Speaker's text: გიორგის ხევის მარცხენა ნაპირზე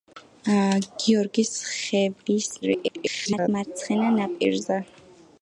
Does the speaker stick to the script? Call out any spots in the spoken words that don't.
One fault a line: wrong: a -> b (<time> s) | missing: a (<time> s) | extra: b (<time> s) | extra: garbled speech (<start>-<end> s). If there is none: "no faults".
extra: garbled speech (2.6-3.5 s)